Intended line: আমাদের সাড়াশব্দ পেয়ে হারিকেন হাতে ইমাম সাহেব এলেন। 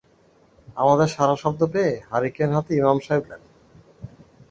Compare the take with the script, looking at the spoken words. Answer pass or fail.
pass